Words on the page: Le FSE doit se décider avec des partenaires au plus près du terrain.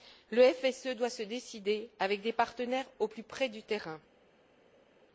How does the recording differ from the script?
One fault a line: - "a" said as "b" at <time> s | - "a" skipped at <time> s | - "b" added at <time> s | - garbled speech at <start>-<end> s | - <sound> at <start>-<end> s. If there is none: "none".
none